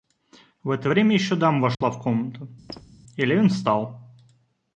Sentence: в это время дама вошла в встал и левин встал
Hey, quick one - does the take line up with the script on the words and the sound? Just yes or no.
no